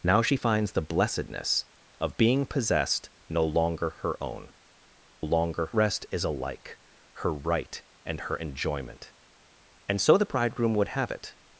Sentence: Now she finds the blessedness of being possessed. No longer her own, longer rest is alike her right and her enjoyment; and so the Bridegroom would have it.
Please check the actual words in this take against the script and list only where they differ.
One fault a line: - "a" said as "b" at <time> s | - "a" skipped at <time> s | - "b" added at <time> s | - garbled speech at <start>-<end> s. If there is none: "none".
none